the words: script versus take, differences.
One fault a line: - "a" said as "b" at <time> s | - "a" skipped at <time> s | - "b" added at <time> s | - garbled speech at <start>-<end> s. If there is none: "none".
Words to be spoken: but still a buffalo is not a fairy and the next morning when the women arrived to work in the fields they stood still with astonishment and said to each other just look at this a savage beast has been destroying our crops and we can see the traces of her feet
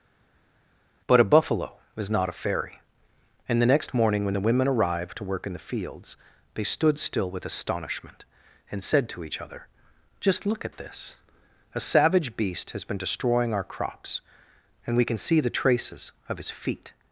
- "still" skipped at 1.2 s
- "her" said as "his" at 16.4 s